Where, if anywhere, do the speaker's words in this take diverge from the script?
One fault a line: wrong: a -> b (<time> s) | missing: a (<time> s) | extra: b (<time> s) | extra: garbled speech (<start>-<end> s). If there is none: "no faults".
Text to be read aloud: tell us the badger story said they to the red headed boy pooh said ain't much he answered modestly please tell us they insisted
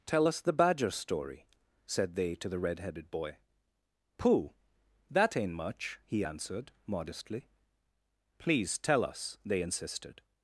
wrong: said -> that (5.1 s)